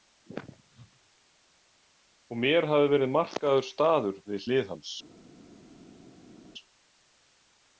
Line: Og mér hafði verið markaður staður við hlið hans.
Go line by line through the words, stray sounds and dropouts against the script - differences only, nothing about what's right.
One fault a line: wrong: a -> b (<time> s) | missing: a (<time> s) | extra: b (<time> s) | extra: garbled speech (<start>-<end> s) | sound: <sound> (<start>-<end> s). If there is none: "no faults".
no faults